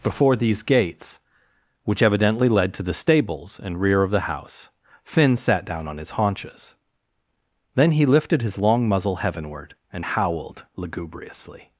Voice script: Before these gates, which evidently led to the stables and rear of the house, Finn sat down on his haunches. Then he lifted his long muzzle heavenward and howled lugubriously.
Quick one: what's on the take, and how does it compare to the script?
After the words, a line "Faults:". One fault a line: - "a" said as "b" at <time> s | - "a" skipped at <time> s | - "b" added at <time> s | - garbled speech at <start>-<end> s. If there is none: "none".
Before these gates, which evidently led to the stables and rear of the house, Finn sat down on his haunches. Then he lifted his long muzzle heavenward and howled lugubriously.
Faults:
none